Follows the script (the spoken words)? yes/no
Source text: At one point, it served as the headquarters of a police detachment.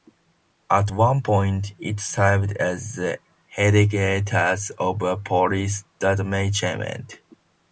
yes